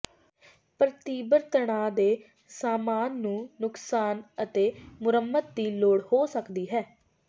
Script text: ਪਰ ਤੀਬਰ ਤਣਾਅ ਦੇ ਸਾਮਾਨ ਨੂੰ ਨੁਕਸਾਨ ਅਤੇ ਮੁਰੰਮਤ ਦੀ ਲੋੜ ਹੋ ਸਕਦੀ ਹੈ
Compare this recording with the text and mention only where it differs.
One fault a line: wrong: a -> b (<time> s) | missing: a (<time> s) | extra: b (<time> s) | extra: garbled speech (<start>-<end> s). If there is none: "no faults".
no faults